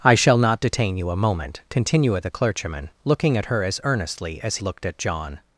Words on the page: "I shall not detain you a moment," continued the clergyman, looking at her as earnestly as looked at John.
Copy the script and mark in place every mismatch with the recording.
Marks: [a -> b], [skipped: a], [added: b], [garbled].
"I shall not detain you a moment," continued the clergyman, looking at her as earnestly as looked at John.